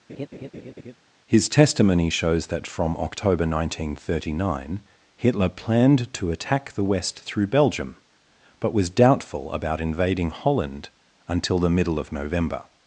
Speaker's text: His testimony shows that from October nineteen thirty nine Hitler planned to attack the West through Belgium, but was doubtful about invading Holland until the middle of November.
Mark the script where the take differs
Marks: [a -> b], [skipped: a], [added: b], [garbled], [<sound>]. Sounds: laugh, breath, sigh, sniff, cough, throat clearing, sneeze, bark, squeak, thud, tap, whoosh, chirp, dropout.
[laugh] His testimony shows that from October nineteen thirty nine Hitler planned to attack the West through Belgium, but was doubtful about invading Holland until the middle of November.